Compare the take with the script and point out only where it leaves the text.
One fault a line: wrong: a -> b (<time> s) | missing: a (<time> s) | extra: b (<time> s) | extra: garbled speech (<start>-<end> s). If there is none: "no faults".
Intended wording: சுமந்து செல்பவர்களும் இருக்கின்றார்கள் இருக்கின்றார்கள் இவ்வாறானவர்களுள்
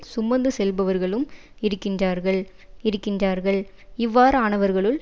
no faults